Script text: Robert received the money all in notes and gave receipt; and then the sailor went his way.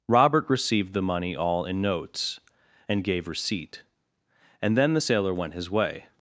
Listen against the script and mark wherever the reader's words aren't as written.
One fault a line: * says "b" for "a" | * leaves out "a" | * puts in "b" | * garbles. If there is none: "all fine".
all fine